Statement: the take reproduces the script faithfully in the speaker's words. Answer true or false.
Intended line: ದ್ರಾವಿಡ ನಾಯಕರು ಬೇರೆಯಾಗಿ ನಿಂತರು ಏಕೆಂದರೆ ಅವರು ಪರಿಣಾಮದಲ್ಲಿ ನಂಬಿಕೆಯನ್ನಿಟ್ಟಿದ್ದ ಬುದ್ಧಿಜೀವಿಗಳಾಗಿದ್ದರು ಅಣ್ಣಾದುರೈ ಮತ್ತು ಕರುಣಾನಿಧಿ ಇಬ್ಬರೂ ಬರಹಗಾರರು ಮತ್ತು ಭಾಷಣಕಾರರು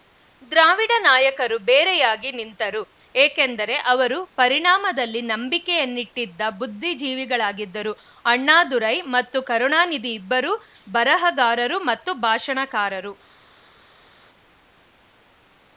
true